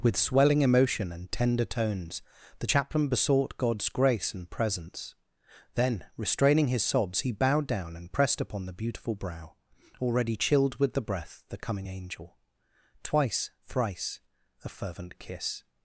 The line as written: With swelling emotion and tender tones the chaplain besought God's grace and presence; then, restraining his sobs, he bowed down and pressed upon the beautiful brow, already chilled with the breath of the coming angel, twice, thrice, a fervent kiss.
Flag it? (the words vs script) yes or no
yes